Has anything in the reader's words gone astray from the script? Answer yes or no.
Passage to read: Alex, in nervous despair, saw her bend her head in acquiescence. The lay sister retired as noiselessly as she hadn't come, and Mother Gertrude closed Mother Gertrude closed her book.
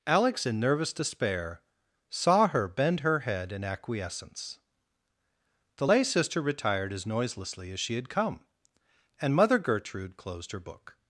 yes